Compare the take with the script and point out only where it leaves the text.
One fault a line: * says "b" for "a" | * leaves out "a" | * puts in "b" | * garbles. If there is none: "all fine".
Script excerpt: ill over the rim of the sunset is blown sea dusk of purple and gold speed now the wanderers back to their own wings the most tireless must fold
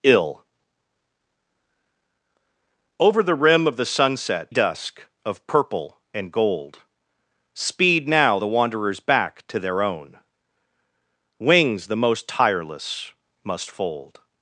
* leaves out "is blown sea"